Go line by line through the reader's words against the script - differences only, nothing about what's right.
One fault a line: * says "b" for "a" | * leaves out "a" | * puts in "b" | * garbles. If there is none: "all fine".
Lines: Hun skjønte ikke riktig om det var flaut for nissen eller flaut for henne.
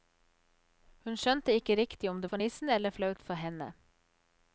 * leaves out "var flaut"